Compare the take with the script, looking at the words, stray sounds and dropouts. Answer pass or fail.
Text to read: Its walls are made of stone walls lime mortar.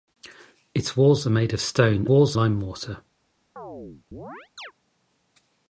fail